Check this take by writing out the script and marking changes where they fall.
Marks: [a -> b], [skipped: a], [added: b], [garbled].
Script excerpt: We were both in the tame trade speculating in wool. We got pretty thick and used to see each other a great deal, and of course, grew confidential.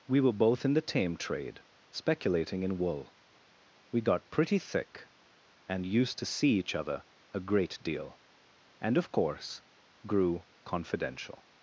We were both in the tame trade speculating in wool. We got pretty thick and used to see each other a great deal, and of course, grew confidential.